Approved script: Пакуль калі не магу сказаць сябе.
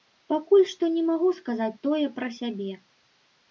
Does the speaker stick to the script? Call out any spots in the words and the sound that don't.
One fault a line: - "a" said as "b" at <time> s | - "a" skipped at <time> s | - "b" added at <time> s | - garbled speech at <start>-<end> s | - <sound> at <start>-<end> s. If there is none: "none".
- "калі" said as "што" at 0.7 s
- "тое пра" added at 1.9 s